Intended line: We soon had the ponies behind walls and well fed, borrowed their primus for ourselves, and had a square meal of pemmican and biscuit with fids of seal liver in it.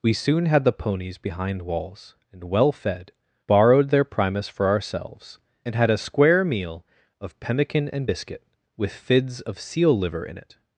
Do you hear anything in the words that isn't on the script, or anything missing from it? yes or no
no